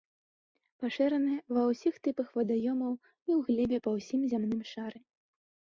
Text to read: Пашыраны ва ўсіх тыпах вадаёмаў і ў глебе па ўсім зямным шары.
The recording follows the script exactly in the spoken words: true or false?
true